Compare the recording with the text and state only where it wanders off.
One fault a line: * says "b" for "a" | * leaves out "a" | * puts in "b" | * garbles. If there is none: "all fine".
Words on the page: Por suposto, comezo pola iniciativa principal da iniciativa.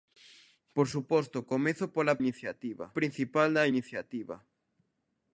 all fine